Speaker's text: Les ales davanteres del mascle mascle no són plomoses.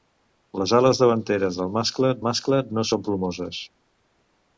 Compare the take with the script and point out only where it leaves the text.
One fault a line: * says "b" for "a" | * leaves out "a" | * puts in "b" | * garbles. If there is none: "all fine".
all fine